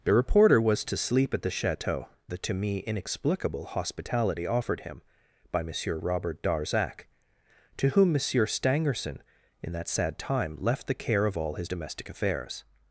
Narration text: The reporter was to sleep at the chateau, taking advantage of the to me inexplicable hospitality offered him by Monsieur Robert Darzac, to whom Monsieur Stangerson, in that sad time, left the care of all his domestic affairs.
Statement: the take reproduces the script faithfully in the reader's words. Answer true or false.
false